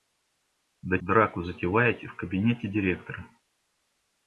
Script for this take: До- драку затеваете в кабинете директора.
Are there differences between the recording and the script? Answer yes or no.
no